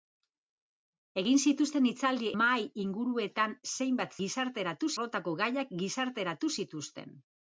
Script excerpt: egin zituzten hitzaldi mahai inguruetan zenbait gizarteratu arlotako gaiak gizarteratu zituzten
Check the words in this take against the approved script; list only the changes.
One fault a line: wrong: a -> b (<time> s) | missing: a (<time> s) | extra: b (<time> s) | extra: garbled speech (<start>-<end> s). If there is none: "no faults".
no faults